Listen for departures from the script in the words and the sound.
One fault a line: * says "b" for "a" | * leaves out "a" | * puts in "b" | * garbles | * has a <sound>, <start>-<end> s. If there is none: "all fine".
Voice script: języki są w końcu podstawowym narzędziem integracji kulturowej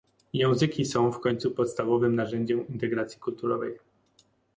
all fine